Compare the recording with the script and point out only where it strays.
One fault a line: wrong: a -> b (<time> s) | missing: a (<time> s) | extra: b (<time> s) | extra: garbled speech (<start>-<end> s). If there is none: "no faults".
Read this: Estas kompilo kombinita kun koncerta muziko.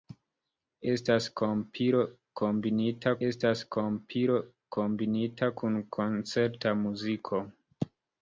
extra: estas kompilo kombinita (3.3 s)